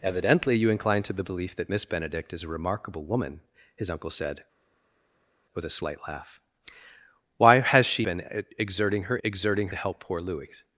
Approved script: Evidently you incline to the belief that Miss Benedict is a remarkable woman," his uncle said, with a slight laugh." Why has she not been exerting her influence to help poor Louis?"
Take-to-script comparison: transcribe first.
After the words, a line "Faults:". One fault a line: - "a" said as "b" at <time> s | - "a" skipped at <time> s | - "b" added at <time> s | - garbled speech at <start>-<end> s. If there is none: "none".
Evidently you incline to the belief that Miss Benedict is a remarkable woman," his uncle said, with a slight laugh." Why has she been exerting her exerting to help poor Louis?"
Faults:
- "not" skipped at 8.0 s
- "influence" said as "exerting" at 9.2 s